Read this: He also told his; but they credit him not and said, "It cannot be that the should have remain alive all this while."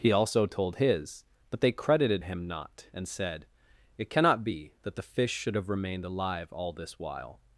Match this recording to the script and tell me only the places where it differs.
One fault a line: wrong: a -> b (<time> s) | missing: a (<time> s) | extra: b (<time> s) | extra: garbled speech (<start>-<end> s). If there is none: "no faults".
wrong: credit -> credited (1.7 s)
extra: fish (5.0 s)
wrong: remain -> remained (5.7 s)